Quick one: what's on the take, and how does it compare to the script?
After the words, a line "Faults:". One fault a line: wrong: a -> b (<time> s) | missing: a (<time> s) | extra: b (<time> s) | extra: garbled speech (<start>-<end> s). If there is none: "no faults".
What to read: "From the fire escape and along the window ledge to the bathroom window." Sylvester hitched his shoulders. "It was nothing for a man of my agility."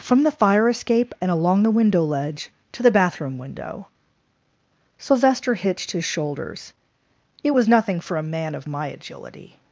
"From the fire escape and along the window ledge to the bathroom window." Sylvester hitched his shoulders. "It was nothing for a man of my agility."
Faults:
no faults